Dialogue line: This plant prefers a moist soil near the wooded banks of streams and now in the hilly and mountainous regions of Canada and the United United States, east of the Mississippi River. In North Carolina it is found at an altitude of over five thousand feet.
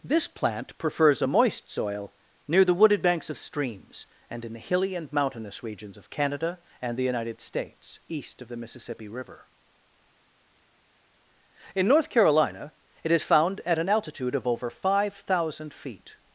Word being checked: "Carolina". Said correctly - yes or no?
yes